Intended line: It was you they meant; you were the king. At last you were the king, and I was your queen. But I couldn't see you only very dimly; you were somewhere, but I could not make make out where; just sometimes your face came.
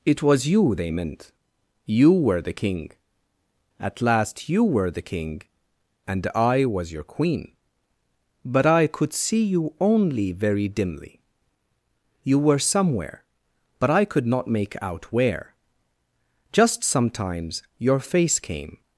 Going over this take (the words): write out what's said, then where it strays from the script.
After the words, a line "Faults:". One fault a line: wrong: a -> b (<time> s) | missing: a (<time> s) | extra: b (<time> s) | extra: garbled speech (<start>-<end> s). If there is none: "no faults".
It was you they meant; you were the king. At last you were the king, and I was your queen. But I could see you only very dimly; you were somewhere, but I could not make out where; just sometimes your face came.
Faults:
wrong: couldn't -> could (8.9 s)
missing: make (14.7 s)